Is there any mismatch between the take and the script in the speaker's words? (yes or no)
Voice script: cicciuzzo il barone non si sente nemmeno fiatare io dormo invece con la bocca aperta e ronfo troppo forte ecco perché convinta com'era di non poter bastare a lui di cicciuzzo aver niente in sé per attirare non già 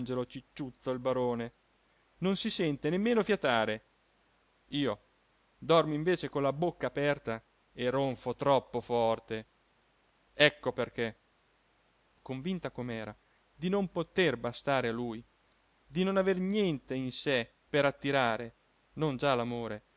yes